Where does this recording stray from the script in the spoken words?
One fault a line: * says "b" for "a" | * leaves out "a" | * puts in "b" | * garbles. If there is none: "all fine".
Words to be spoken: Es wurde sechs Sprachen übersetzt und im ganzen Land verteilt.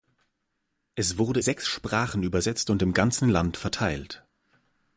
all fine